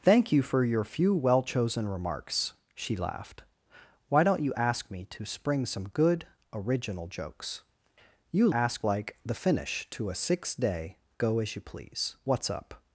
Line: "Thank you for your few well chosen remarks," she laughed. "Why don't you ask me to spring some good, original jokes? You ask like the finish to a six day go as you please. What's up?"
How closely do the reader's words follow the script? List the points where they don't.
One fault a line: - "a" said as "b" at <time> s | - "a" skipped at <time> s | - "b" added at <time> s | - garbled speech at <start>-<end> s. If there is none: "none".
none